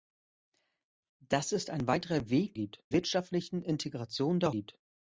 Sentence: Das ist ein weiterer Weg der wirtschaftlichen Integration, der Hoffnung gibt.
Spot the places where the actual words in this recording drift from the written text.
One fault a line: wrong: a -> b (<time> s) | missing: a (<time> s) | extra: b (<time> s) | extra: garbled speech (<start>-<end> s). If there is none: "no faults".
wrong: der -> gibt (2.5 s)
missing: Hoffnung (4.5 s)